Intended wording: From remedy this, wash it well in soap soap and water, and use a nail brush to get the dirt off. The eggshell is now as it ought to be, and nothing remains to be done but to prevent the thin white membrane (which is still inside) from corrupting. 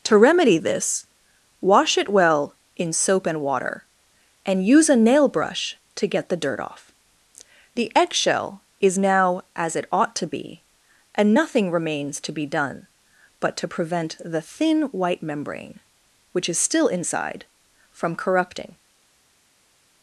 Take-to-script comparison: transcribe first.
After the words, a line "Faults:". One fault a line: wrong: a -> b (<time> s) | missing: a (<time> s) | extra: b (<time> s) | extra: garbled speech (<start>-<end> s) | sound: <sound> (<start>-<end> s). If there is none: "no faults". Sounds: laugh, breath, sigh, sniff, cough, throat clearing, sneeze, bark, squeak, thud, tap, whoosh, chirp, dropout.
To remedy this, wash it well in soap and water, and use a nail brush to get the dirt off. The eggshell is now as it ought to be, and nothing remains to be done but to prevent the thin white membrane (which is still inside) from corrupting.
Faults:
wrong: From -> To (0.1 s)
missing: soap (3.3 s)